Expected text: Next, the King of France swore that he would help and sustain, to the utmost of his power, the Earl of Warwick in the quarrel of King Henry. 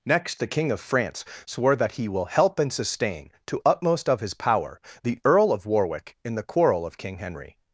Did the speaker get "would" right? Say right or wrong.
wrong